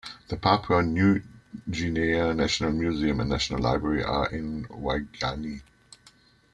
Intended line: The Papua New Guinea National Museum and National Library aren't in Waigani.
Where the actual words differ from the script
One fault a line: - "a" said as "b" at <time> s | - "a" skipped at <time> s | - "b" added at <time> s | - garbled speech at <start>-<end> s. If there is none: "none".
- "aren't" said as "are" at 4.0 s